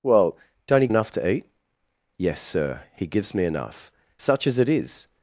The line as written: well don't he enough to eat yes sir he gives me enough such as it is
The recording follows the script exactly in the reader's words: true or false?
true